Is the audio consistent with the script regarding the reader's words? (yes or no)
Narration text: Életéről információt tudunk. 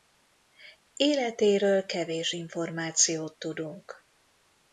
no